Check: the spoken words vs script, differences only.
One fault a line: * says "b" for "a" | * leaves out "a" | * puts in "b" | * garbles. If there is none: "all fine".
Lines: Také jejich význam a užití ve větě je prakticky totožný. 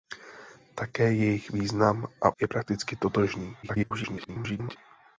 * leaves out "užití ve větě"
* garbles